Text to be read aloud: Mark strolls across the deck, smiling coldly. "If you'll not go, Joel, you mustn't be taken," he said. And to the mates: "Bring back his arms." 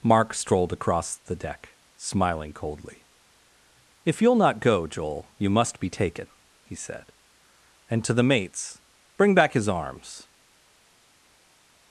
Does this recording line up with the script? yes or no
no